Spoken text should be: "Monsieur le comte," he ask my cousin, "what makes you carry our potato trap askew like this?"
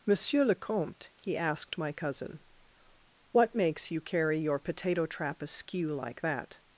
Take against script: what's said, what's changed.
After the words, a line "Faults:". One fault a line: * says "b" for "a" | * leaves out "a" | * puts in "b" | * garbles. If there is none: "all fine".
"Monsieur le comte," he asked my cousin, "what makes you carry your potato trap askew like that?"
Faults:
* says "asked" for "ask"
* says "your" for "our"
* says "that" for "this"